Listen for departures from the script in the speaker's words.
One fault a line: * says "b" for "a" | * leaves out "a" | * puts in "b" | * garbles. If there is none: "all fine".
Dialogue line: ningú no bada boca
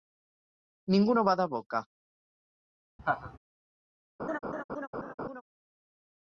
all fine